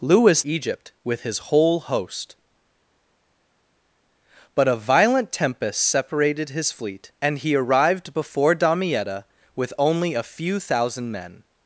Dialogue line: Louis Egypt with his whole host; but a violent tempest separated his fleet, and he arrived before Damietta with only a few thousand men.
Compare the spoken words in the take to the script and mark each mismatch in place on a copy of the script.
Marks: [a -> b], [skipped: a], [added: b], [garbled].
Louis Egypt with his whole host; but a violent tempest separated his fleet, and he arrived before Damietta with only a few thousand men.